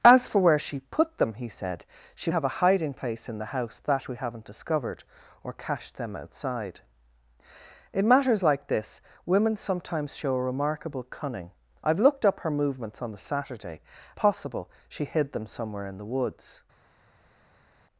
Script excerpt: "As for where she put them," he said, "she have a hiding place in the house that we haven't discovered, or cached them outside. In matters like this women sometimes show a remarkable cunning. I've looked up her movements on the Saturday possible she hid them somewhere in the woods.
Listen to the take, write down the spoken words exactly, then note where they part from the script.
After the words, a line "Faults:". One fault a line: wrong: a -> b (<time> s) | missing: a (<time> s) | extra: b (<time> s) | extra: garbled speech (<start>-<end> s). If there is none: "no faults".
"As for where she put them," he said, "she have a hiding place in the house that we haven't discovered, or cached them outside. In matters like this women sometimes show a remarkable cunning. I've looked up her movements on the Saturday possible she hid them somewhere in the woods.
Faults:
no faults